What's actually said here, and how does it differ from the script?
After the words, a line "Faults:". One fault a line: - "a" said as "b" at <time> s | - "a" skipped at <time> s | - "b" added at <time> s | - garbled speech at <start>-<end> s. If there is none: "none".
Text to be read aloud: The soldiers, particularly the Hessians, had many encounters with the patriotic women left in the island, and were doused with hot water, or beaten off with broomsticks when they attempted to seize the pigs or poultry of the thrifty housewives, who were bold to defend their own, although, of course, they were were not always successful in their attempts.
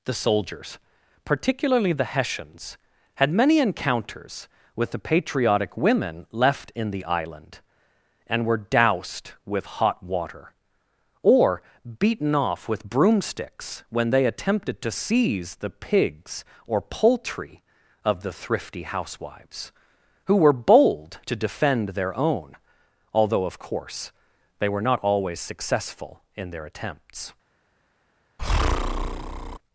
The soldiers, particularly the Hessians, had many encounters with the patriotic women left in the island, and were doused with hot water, or beaten off with broomsticks when they attempted to seize the pigs or poultry of the thrifty housewives, who were bold to defend their own, although, of course, they were not always successful in their attempts.
Faults:
- "were" skipped at 24.8 s